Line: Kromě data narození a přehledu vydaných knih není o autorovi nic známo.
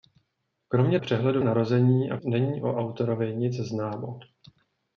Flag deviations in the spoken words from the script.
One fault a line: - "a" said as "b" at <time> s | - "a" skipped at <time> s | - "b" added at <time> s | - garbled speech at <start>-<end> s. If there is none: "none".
- "data" said as "přehledu" at 1.0 s
- "přehledu vydaných knih" skipped at 2.2 s